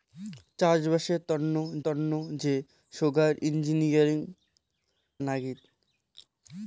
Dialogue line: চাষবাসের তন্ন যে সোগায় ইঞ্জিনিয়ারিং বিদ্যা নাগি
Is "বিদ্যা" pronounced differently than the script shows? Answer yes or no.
yes